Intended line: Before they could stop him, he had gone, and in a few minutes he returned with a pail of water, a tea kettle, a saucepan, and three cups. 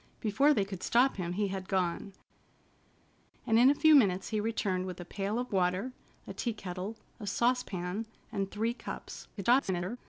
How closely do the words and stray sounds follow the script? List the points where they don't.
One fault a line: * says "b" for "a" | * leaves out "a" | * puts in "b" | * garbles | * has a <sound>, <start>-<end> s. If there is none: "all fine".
* garbles